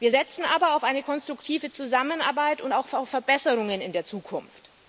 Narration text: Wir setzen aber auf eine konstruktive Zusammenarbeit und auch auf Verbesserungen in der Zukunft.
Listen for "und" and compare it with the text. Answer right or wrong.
right